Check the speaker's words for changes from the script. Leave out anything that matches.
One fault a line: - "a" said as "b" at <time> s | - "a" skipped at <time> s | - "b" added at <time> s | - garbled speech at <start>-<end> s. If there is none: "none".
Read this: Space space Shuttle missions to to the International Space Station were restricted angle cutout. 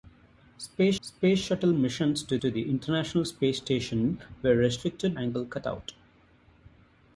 none